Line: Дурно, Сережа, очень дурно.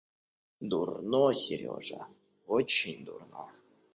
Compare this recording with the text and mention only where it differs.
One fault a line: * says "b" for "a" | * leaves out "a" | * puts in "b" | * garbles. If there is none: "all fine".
all fine